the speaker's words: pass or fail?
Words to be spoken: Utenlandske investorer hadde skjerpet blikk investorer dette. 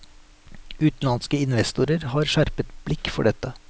fail